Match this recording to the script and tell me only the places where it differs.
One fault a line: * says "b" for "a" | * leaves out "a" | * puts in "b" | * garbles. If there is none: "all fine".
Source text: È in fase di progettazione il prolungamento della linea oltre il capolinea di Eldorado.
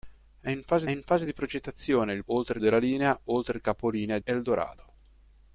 * puts in "in fase"
* says "oltre" for "prolungamento"
* leaves out "di"